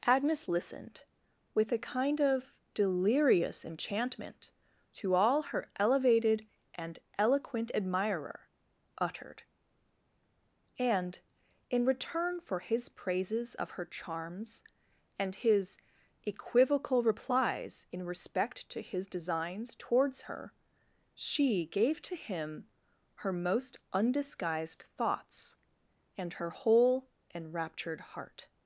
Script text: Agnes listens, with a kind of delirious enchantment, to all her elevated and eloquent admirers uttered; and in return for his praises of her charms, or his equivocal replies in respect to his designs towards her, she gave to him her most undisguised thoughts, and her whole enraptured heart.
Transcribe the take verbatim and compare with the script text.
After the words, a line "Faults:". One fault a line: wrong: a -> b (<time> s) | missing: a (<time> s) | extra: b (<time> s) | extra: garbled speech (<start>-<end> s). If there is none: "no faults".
Agnes listened, with a kind of delirious enchantment, to all her elevated and eloquent admirer uttered; and in return for his praises of her charms, and his equivocal replies in respect to his designs towards her, she gave to him her most undisguised thoughts, and her whole enraptured heart.
Faults:
wrong: listens -> listened (0.5 s)
wrong: admirers -> admirer (7.8 s)
wrong: or -> and (15.2 s)